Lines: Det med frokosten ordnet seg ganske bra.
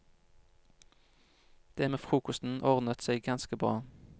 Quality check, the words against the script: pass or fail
pass